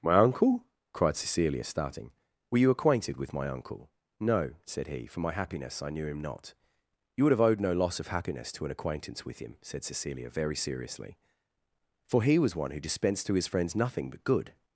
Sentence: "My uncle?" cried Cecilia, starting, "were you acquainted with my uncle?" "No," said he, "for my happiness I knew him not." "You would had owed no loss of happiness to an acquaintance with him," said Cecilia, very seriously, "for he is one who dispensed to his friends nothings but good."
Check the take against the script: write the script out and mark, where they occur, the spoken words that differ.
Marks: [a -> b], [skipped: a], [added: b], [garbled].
"My uncle?" cried Cecilia, starting, "were you acquainted with my uncle?" "No," said he, "for my happiness I knew him not." "You would [had -> have] owed no loss of happiness to an acquaintance with him," said Cecilia, very seriously, "for he [is -> was] one who dispensed to his friends [nothings -> nothing] but good."